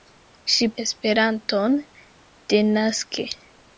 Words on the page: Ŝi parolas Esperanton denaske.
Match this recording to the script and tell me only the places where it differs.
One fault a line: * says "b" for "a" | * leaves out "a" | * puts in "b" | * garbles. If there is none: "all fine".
* leaves out "parolas"